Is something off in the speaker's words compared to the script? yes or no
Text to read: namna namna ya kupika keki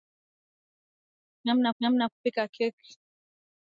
no